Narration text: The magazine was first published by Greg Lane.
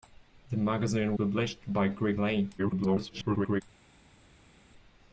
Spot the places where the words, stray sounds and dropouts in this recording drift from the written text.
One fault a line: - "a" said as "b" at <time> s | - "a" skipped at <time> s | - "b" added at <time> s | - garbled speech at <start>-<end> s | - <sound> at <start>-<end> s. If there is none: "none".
- "was first" skipped at 1.2 s
- garbled speech at 2.6-3.6 s